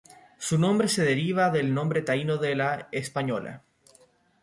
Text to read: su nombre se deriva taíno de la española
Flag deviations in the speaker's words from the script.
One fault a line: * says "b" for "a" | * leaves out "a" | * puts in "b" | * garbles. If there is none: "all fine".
* puts in "del nombre"